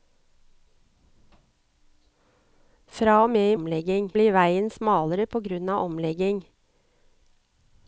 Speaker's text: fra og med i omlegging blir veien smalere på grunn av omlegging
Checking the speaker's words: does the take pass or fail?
pass